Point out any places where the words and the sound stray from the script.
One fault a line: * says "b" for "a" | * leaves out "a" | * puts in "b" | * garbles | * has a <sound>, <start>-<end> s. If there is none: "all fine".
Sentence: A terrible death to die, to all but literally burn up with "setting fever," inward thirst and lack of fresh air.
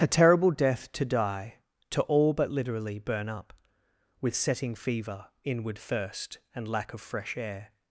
all fine